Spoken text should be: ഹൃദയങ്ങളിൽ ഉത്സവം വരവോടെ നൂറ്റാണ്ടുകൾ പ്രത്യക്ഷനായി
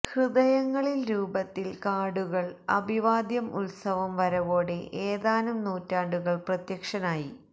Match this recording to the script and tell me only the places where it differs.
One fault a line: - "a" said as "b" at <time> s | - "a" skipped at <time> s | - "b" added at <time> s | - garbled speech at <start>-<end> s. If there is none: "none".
- "രൂപത്തിൽ കാർഡുകൾ അഭിവാദ്യം" added at 1.1 s
- "ഏതാനും" added at 5.1 s